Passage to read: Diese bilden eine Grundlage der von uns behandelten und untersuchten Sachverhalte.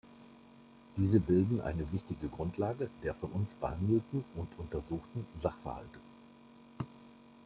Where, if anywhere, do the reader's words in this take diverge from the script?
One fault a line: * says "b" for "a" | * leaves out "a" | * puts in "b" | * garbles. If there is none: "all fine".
* puts in "wichtige"